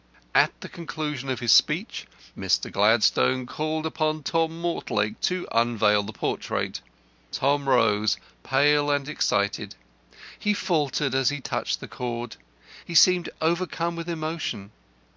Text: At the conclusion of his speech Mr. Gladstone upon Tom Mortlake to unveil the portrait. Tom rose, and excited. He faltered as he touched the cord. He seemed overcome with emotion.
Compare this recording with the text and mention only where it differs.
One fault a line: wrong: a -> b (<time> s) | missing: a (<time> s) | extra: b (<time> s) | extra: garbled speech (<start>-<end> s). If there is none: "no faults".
extra: called (3.5 s)
extra: pale (8.4 s)